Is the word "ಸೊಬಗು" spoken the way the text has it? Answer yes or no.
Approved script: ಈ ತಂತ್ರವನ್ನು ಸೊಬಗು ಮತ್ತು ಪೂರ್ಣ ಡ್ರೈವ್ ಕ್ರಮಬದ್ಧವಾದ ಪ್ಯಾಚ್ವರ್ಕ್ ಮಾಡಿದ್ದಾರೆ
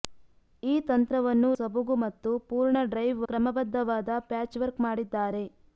yes